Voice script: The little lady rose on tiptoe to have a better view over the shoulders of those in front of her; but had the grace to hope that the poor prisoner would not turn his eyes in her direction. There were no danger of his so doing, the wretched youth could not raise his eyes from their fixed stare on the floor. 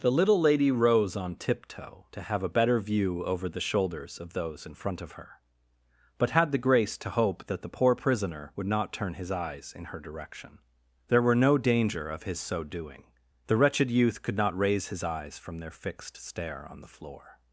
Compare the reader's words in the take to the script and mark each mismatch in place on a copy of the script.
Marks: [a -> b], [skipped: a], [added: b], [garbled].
The little lady rose on tiptoe to have a better view over the shoulders of those in front of her; but had the grace to hope that the poor prisoner would not turn his eyes in her direction. There were no danger of his so doing, the wretched youth could not raise his eyes from their fixed stare on the floor.